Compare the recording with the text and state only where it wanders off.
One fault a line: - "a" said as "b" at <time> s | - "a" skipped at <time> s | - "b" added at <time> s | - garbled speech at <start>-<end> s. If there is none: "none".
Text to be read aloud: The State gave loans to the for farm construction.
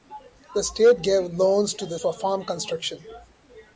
none